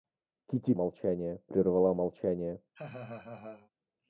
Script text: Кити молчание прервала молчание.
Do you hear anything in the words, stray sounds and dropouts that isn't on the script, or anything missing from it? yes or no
yes